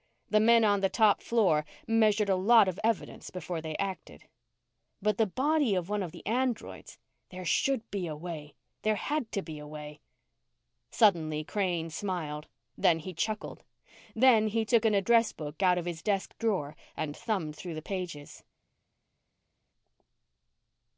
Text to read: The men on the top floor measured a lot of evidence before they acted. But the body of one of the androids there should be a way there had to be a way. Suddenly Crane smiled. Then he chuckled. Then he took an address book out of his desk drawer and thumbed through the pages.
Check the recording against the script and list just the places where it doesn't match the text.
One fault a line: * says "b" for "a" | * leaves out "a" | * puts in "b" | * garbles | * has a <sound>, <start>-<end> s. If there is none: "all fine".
all fine